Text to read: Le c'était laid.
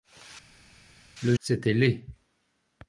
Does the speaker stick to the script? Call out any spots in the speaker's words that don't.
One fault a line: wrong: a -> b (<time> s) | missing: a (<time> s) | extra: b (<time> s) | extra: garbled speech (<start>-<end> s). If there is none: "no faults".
no faults